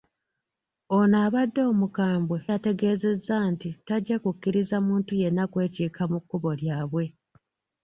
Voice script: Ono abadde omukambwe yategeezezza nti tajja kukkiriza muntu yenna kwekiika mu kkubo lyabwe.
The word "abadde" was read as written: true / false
true